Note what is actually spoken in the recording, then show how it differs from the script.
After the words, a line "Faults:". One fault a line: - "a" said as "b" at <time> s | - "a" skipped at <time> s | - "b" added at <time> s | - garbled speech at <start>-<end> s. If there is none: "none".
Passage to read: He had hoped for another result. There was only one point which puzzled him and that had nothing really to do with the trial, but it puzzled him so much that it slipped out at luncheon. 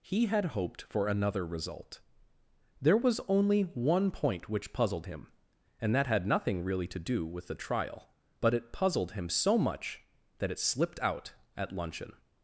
He had hoped for another result. There was only one point which puzzled him and that had nothing really to do with the trial, but it puzzled him so much that it slipped out at luncheon.
Faults:
none